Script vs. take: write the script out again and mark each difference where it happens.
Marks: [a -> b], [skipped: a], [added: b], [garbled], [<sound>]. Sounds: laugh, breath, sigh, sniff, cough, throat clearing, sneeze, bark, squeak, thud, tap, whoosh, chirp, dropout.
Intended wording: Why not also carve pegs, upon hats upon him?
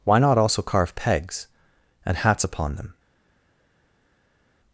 Why not also carve pegs, [upon -> and] hats upon [him? -> them]